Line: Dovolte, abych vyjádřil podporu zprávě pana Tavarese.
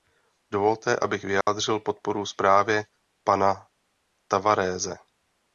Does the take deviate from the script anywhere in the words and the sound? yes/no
yes